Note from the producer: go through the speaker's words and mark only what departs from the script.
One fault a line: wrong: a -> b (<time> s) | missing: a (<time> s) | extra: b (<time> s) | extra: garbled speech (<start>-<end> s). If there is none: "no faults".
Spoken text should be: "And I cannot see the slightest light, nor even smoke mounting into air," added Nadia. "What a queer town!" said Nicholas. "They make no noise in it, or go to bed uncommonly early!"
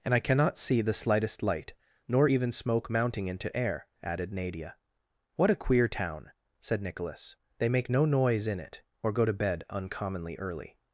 no faults